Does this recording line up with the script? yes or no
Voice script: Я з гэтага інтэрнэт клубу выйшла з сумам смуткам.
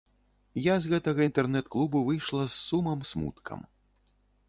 yes